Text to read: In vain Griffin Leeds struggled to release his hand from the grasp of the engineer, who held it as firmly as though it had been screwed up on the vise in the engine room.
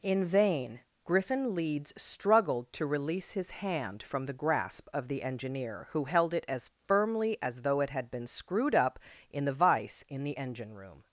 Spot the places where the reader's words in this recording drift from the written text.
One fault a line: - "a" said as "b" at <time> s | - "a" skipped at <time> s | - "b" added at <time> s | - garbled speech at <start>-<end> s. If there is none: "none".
- "on" said as "in" at 9.3 s